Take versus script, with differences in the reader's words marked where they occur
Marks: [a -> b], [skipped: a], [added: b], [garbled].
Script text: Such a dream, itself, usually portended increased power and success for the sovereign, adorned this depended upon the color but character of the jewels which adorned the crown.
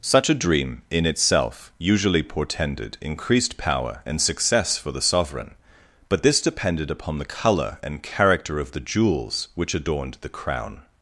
Such a dream, [added: in] itself, usually portended increased power and success for the sovereign, [adorned -> but] this depended upon the color [but -> and] character of the jewels which adorned the crown.